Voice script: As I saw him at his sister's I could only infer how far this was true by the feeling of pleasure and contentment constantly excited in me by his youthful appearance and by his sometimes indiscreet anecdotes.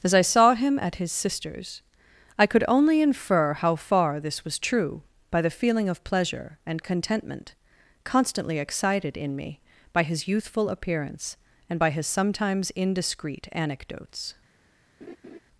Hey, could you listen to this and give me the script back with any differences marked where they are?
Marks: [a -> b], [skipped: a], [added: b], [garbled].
As I saw him at his sister's I could only infer how far this was true by the feeling of pleasure and contentment constantly excited in me by his youthful appearance and by his sometimes indiscreet anecdotes.